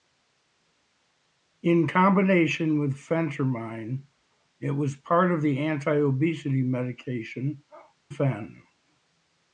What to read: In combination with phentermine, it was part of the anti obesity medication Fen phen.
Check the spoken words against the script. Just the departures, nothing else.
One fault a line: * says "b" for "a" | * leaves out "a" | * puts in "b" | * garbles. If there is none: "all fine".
* leaves out "Fen"